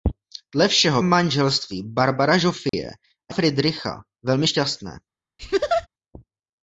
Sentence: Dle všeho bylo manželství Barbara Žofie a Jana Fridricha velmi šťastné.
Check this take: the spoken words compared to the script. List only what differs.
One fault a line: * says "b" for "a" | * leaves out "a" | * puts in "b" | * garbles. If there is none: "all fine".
* leaves out "bylo"
* leaves out "Jana"